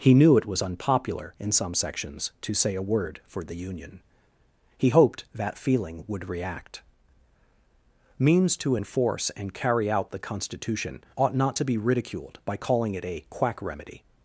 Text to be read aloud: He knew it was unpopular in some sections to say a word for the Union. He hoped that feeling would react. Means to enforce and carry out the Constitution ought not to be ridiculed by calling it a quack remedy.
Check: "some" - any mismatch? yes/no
no